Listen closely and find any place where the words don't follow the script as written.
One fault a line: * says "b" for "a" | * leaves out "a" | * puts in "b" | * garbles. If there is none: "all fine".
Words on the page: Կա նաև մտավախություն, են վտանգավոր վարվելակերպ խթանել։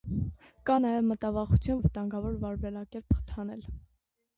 all fine